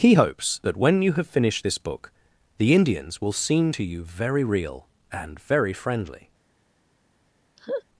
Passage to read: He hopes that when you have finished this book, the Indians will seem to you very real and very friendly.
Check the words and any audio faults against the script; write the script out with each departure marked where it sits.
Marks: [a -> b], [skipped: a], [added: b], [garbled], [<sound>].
He hopes that when you have finished this book, the Indians will seem to you very real and very friendly. [laugh]